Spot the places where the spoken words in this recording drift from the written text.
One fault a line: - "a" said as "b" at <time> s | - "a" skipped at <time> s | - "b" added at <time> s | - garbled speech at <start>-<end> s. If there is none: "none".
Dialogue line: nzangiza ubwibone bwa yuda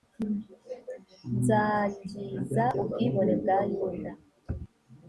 none